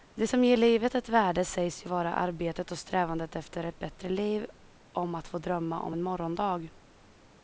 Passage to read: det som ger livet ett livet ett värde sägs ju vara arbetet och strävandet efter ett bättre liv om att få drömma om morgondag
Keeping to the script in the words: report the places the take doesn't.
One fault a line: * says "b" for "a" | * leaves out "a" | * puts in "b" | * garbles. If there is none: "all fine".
* leaves out "livet ett"
* puts in "en"